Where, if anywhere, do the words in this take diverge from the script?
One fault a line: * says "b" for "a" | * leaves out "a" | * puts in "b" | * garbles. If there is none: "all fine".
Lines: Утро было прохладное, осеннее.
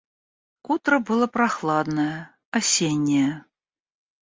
all fine